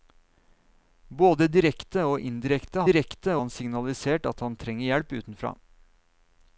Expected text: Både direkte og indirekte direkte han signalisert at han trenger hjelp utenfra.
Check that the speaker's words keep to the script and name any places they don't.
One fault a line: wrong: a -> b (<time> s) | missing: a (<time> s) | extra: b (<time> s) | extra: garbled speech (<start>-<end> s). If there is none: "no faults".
no faults